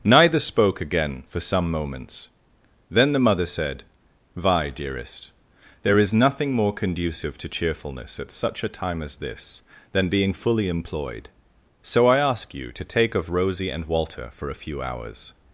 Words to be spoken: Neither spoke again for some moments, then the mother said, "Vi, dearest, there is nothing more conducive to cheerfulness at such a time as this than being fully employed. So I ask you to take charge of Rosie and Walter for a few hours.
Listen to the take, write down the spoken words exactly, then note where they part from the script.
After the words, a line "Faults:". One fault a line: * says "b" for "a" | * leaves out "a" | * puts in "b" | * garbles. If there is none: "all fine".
Neither spoke again for some moments, then the mother said, "Vi, dearest, there is nothing more conducive to cheerfulness at such a time as this than being fully employed. So I ask you to take of Rosie and Walter for a few hours.
Faults:
* leaves out "charge"